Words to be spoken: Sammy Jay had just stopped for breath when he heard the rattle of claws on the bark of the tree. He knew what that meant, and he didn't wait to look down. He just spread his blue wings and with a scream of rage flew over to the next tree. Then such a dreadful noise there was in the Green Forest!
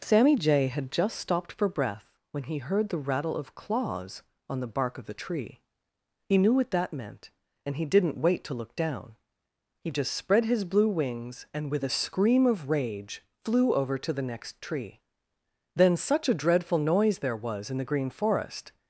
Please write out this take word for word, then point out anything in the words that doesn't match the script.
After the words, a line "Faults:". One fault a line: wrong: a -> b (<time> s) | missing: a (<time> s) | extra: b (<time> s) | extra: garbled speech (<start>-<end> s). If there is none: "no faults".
Sammy Jay had just stopped for breath when he heard the rattle of claws on the bark of the tree. He knew what that meant, and he didn't wait to look down. He just spread his blue wings and with a scream of rage flew over to the next tree. Then such a dreadful noise there was in the Green Forest!
Faults:
no faults